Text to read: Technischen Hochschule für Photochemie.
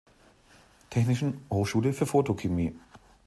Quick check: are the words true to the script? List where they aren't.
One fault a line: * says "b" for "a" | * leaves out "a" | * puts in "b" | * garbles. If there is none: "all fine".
all fine